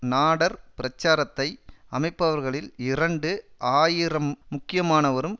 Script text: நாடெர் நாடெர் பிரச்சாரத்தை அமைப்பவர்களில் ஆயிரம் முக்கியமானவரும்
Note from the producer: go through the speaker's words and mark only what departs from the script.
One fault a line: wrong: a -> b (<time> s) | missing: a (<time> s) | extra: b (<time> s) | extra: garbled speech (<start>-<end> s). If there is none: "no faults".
missing: நாடெர் (0.6 s)
extra: இரண்டு (2.8 s)